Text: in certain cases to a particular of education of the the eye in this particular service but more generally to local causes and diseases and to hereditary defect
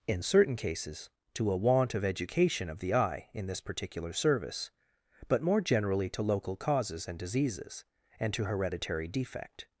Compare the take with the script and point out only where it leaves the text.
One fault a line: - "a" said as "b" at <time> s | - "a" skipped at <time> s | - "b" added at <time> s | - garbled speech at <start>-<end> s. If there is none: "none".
- "particular" said as "want" at 1.6 s
- "the" skipped at 2.9 s